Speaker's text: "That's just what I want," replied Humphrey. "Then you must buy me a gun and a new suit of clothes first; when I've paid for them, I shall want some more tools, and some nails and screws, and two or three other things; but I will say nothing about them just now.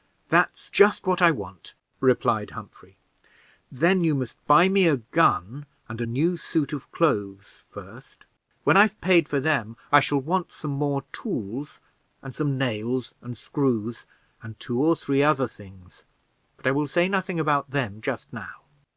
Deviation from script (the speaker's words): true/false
false